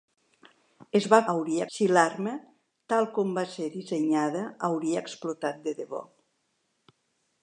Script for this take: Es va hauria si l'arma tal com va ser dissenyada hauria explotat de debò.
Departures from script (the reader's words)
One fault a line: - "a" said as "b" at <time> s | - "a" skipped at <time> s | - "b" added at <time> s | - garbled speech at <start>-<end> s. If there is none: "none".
none